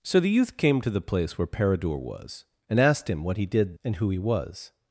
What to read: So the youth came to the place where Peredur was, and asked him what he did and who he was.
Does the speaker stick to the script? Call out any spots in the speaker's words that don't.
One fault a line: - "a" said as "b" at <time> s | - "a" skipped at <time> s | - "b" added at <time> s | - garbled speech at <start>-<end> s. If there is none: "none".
none